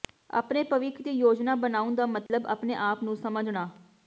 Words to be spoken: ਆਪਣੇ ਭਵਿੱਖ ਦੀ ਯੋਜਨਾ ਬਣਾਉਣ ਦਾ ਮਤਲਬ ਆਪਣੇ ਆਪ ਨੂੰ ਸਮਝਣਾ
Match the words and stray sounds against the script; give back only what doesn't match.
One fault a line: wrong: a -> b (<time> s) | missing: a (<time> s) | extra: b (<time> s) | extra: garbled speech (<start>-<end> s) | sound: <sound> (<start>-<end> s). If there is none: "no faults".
sound: dropout (2.3-2.3 s)